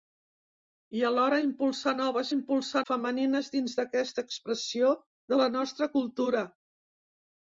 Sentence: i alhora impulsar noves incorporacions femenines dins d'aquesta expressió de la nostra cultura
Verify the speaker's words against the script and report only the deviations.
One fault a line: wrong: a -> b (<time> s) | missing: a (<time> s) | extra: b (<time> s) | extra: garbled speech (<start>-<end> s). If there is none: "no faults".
wrong: incorporacions -> impulsar (2.4 s)